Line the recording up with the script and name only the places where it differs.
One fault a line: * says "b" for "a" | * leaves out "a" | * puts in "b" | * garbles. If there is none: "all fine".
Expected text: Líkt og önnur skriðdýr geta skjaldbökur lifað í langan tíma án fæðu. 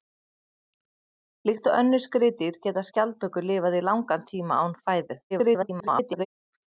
* garbles